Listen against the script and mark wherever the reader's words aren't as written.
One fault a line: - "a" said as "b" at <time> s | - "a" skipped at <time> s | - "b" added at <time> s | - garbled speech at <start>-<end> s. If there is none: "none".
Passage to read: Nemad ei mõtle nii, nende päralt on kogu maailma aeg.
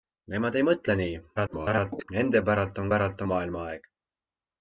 - garbled speech at 1.4-2.1 s
- "kogu" said as "päralt" at 2.9 s